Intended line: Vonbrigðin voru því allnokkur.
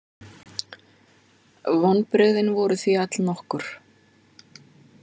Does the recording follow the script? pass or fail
pass